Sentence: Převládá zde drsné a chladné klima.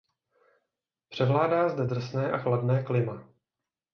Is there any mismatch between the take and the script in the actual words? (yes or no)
no